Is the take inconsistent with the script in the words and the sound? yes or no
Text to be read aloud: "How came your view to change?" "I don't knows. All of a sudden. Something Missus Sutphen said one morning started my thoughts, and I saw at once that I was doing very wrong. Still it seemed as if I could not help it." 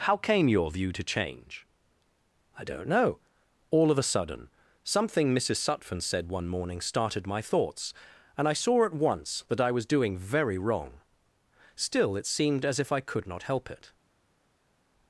yes